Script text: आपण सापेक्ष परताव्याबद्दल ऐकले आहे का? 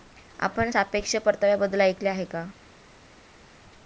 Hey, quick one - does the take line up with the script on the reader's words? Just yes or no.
yes